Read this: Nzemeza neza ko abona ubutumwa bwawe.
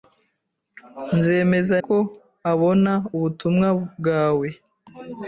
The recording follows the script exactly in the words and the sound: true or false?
false